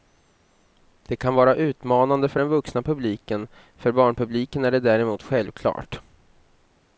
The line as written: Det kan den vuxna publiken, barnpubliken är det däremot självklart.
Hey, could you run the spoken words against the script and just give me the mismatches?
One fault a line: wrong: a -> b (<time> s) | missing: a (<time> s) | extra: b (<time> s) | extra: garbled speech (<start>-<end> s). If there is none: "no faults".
extra: vara utmanande för (1.4 s)
extra: för (3.8 s)